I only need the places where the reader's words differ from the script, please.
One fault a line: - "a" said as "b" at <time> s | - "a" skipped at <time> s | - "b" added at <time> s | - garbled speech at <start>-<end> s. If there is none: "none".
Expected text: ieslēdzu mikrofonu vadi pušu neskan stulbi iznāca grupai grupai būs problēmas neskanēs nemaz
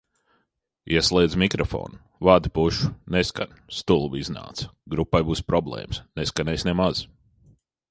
- "grupai" skipped at 5.2 s